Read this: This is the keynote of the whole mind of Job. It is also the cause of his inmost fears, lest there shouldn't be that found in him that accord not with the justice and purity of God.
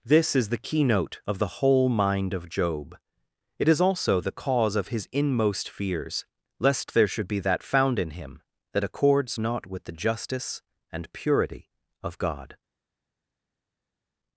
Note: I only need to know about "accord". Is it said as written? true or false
false